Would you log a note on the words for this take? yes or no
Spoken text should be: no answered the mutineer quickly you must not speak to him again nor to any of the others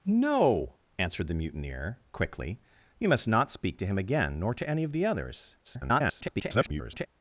yes